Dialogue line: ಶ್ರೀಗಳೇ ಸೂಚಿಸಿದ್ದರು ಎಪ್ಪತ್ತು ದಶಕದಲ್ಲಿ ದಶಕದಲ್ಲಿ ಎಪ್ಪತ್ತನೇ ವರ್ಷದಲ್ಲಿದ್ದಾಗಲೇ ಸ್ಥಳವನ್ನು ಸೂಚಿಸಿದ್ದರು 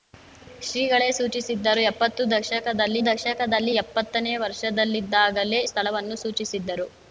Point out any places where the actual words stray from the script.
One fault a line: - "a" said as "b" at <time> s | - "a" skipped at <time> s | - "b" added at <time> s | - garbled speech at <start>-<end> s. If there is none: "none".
none